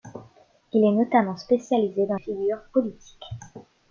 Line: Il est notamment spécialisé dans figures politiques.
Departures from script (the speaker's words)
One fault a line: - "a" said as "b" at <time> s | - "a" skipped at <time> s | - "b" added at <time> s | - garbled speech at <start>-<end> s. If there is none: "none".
none